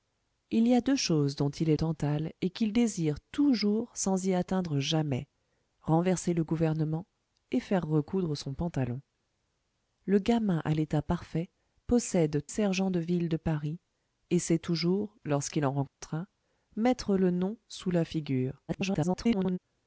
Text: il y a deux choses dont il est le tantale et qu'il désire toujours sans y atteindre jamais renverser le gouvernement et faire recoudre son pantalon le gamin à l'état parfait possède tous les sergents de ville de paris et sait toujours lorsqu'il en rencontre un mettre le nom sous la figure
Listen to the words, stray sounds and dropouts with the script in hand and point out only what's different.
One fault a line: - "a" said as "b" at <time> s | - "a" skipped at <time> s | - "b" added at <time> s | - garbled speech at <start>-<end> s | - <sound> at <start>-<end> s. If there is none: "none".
- "le" skipped at 1.8 s
- "tous les" skipped at 12.4 s
- dropout at 15.9-16.0 s
- garbled speech at 18.7-19.6 s